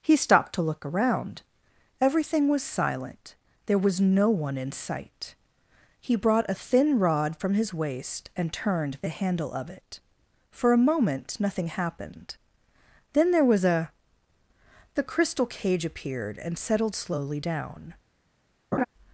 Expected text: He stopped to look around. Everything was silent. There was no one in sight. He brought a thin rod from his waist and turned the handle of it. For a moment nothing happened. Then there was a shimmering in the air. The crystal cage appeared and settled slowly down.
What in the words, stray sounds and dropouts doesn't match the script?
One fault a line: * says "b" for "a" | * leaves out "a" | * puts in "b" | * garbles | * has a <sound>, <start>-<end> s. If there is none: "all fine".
* leaves out "shimmering in the air"
* has a laugh, 18.7-18.8 s